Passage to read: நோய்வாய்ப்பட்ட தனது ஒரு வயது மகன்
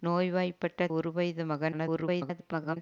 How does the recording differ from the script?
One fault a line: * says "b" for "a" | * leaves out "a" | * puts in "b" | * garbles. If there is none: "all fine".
* leaves out "தனது"
* garbles